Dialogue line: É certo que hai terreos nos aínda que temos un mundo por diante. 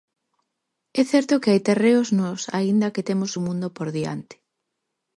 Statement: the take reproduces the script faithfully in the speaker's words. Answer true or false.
true